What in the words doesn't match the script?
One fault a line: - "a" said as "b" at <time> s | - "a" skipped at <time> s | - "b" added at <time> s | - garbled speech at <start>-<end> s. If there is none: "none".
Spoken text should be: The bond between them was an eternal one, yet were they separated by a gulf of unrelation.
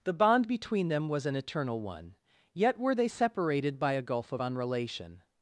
none